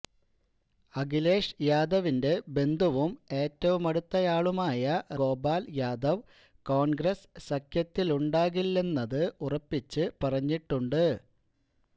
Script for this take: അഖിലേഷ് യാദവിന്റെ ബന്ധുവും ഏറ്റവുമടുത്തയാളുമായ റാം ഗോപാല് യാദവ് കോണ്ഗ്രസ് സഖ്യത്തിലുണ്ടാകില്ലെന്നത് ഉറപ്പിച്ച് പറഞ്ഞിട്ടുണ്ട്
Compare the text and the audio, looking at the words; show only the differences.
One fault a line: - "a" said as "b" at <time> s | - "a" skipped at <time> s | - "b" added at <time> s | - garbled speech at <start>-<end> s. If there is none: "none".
- "റാം" skipped at 4.8 s